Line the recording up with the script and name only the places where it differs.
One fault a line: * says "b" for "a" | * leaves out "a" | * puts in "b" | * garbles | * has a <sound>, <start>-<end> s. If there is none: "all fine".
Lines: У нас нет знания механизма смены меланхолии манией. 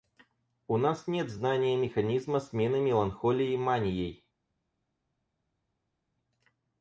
all fine